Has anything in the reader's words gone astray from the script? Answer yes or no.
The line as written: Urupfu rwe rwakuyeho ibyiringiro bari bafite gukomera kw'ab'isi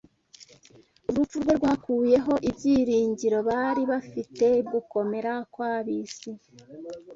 no